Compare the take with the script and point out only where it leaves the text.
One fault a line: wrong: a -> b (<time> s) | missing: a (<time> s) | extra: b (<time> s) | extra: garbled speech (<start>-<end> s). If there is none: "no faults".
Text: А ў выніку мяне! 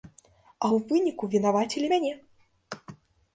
extra: вінавацілі (1.3 s)